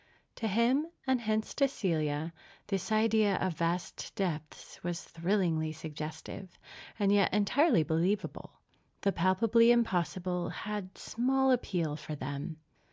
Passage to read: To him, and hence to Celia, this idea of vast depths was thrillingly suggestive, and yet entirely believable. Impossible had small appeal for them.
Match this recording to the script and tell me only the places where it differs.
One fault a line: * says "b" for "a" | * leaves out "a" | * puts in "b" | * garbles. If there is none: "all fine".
* puts in "The palpably"